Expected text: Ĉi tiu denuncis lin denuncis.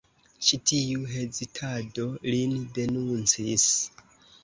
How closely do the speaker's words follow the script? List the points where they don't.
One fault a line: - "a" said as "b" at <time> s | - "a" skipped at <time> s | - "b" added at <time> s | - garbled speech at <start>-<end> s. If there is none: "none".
- "denuncis" said as "hezitado" at 1.2 s